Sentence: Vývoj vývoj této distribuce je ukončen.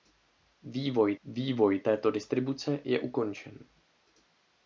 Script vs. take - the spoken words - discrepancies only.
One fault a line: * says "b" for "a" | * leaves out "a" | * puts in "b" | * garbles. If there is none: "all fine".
all fine